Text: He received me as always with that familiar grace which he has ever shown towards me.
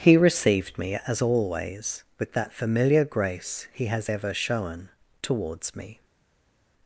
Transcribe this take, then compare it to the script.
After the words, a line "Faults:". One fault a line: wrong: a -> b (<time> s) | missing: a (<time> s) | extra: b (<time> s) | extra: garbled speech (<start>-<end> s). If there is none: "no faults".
He received me as always with that familiar grace he has ever shown towards me.
Faults:
missing: which (3.7 s)